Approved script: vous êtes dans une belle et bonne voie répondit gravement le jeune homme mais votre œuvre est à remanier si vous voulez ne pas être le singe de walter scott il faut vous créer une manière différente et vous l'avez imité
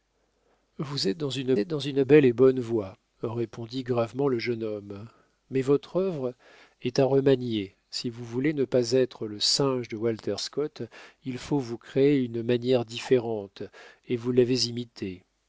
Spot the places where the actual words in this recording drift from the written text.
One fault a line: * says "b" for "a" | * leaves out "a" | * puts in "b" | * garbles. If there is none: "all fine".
* puts in "êtes dans une"